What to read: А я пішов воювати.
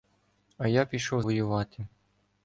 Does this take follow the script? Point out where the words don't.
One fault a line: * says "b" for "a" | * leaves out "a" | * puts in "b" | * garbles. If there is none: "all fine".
all fine